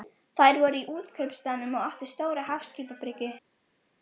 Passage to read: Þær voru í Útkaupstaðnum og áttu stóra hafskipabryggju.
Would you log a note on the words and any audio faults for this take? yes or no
no